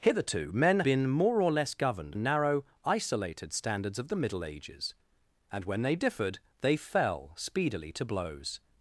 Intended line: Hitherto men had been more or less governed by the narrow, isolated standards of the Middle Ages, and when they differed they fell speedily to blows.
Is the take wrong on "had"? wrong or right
wrong